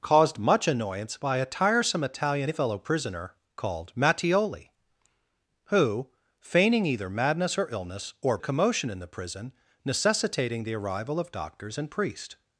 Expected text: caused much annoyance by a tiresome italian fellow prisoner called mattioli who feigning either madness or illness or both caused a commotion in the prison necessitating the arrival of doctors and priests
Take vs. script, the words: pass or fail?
fail